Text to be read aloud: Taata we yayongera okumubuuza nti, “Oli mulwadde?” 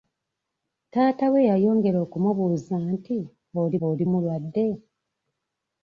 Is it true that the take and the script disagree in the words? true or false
true